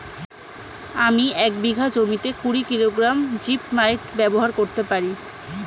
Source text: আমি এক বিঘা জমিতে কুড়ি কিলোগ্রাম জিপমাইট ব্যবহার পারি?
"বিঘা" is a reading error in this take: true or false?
false